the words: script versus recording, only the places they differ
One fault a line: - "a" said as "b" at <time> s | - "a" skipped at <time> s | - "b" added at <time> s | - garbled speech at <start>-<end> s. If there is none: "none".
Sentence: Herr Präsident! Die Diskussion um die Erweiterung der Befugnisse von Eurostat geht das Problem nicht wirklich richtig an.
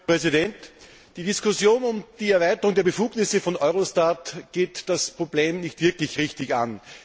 none